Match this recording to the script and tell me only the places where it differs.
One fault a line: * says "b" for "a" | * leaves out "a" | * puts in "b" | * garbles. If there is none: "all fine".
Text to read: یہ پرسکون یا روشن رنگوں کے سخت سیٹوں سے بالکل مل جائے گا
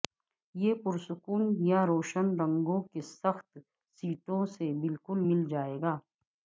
all fine